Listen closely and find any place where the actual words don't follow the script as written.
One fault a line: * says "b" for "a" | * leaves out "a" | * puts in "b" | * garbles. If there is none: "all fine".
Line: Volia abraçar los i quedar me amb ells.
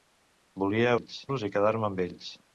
* says "ells" for "abraçar"